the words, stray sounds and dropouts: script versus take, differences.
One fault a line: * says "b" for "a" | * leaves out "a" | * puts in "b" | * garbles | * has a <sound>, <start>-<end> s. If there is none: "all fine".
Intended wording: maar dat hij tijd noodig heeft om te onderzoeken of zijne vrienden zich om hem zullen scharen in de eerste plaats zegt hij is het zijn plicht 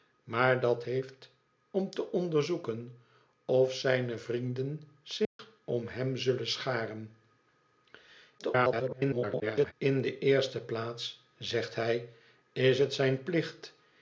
* leaves out "hij tijd noodig"
* has a dropout, 5.2-5.4 s
* garbles